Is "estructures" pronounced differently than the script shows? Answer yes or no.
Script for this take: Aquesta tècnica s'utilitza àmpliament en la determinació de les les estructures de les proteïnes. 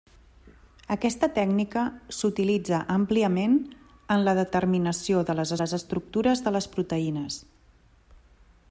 no